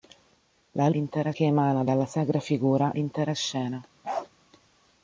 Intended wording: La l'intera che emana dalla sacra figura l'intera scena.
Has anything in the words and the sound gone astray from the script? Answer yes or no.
yes